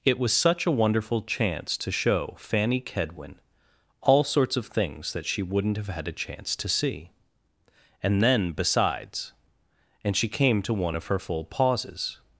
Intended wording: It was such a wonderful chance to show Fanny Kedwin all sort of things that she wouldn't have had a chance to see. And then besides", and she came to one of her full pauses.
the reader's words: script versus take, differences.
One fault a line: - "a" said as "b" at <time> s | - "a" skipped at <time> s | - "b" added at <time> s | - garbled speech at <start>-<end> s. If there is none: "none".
- "sort" said as "sorts" at 4.2 s